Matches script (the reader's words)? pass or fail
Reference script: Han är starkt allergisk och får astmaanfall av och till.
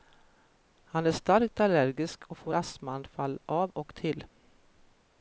pass